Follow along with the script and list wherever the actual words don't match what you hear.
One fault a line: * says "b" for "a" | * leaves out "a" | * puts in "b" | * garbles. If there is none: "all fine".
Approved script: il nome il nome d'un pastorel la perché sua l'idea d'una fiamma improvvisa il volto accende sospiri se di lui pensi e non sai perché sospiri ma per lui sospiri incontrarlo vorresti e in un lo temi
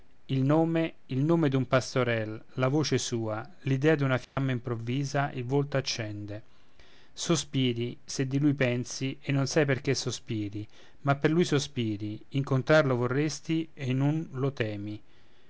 * says "voce" for "perché"